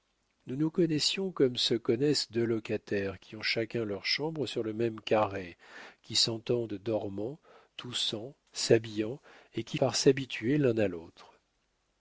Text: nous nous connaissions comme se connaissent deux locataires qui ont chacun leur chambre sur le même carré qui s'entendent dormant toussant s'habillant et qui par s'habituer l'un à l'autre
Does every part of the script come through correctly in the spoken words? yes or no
yes